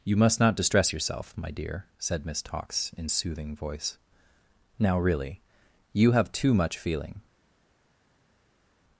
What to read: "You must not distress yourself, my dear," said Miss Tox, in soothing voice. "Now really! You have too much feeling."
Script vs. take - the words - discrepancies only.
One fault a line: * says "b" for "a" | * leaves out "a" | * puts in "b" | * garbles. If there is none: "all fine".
all fine